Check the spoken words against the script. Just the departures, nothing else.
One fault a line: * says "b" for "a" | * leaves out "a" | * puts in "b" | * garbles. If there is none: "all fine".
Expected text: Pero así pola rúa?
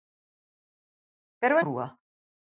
* leaves out "así pola"